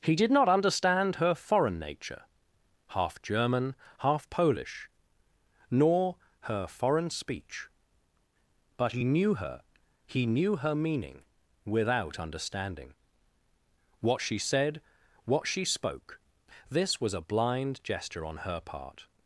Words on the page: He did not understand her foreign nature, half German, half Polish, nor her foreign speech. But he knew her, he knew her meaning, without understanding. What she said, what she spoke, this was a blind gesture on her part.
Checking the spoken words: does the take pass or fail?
pass